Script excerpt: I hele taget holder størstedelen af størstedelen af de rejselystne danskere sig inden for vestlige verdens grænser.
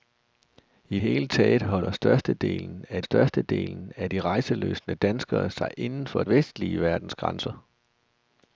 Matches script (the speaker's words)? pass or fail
pass